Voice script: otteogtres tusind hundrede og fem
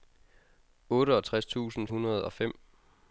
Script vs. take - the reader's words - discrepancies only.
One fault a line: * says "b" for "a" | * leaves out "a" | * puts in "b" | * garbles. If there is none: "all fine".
all fine